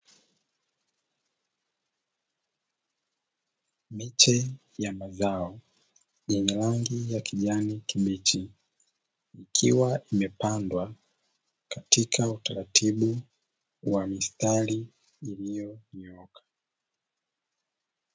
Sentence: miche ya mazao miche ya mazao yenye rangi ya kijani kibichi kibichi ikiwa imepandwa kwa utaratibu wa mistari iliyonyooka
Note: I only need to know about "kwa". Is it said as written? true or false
false